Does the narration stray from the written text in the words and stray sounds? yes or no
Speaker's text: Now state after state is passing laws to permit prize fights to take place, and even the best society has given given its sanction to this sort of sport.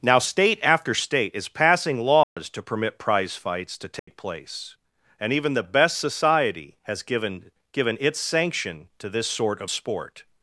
yes